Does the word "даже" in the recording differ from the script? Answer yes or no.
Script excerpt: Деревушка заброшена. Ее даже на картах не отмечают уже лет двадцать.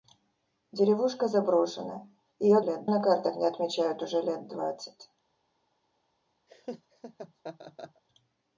yes